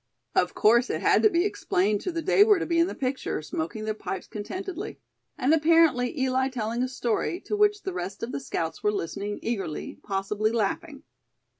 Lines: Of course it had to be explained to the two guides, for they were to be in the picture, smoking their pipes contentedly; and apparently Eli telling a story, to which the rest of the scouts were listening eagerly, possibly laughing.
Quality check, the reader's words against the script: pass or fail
fail